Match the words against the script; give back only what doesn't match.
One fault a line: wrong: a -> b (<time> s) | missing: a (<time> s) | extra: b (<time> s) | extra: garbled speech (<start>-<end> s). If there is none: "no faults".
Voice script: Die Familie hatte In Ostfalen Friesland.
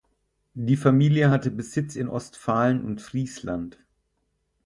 extra: Besitz (1.5 s)
extra: und (2.8 s)